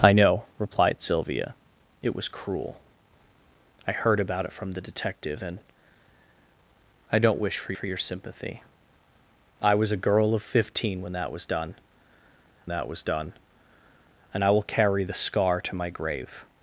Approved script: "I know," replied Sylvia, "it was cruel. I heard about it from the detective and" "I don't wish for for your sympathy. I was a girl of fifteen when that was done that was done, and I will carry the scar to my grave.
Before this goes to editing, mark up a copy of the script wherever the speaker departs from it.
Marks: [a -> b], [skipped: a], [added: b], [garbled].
"I know," replied Sylvia, "it was cruel. I heard about it from the detective and" "I don't wish for for your sympathy. I was a girl of fifteen when that was done that was done, and I will carry the scar to my grave.